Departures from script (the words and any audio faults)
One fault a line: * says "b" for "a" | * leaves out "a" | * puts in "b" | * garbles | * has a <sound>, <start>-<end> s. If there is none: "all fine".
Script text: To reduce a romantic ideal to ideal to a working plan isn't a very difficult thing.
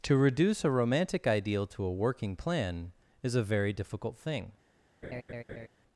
* leaves out "ideal to"
* says "is" for "isn't"
* has a laugh, 5.0-5.7 s